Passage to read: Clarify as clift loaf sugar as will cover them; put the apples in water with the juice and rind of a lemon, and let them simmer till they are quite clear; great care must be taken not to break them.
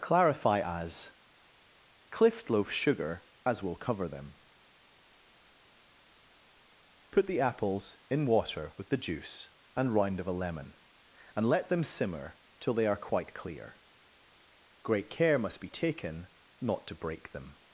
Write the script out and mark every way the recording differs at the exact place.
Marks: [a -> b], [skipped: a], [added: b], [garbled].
Clarify as clift loaf sugar as will cover them; put the apples in water with the juice and rind of a lemon, and let them simmer till they are quite clear; great care must be taken not to break them.